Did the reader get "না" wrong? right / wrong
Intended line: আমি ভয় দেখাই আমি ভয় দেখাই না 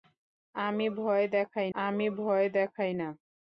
right